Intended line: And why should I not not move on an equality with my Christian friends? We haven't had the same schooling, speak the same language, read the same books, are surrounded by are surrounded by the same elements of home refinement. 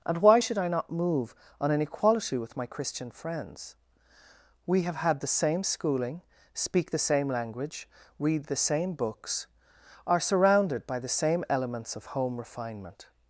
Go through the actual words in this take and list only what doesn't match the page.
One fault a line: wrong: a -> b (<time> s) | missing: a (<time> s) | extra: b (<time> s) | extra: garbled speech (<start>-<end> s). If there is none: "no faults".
missing: not (0.9 s)
wrong: haven't -> have (4.8 s)
missing: are surrounded by (11.0 s)